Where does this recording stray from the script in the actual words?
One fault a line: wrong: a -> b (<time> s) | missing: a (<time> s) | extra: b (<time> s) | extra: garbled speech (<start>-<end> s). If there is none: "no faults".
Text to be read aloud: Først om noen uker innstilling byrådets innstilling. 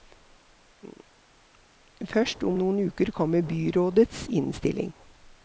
wrong: innstilling -> kommer (3.1 s)